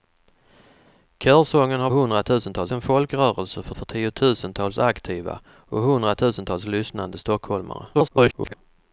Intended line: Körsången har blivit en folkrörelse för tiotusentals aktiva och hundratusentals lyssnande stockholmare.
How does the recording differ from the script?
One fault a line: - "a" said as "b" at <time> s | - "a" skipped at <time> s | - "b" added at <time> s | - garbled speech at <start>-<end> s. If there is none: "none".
- "blivit" said as "hundratusentals" at 1.9 s
- "för" added at 3.7 s
- garbled speech at 7.9-8.5 s